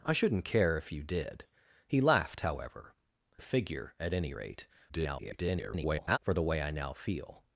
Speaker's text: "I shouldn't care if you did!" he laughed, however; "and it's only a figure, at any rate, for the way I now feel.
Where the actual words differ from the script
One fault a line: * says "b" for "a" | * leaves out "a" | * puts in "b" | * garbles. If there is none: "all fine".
* leaves out "and it's only"
* garbles